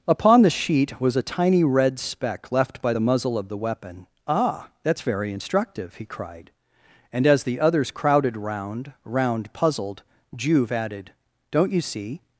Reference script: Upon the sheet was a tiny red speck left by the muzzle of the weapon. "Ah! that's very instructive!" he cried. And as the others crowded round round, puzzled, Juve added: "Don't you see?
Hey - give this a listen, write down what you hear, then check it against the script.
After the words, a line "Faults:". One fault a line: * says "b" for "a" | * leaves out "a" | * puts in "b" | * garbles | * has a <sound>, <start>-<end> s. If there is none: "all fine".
Upon the sheet was a tiny red speck left by the muzzle of the weapon. "Ah! that's very instructive!" he cried. And as the others crowded round round, puzzled, Juve added: "Don't you see?
Faults:
all fine